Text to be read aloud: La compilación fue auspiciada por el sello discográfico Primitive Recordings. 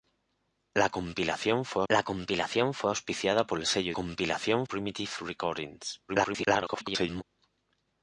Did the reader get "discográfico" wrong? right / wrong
wrong